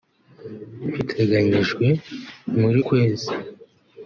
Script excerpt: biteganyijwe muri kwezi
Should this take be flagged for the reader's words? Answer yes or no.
no